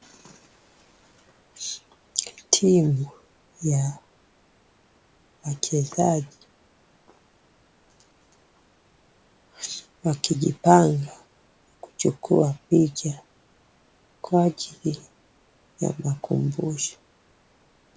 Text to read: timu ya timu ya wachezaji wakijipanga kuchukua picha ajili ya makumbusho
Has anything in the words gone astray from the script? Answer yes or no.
yes